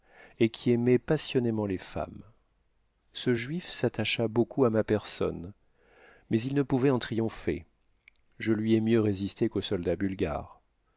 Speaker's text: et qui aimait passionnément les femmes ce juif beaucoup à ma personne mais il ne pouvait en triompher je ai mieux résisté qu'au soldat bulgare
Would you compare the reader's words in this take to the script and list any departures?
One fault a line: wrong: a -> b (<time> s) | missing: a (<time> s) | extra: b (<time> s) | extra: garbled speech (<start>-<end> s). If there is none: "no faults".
extra: s'attacha (3.7 s)
extra: lui (8.5 s)